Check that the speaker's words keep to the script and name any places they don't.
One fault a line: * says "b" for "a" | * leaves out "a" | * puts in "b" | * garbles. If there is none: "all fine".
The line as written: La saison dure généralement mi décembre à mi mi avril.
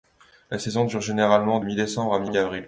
all fine